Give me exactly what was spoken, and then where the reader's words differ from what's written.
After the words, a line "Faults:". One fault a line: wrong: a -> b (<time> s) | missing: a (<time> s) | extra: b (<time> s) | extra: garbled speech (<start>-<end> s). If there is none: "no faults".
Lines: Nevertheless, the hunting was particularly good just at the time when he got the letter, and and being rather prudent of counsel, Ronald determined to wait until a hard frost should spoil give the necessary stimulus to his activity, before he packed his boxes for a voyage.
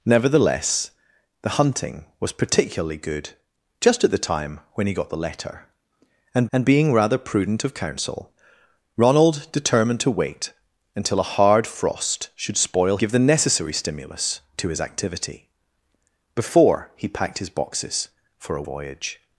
Nevertheless, the hunting was particularly good just at the time when he got the letter, and and being rather prudent of counsel, Ronald determined to wait until a hard frost should spoil give the necessary stimulus to his activity, before he packed his boxes for a voyage.
Faults:
no faults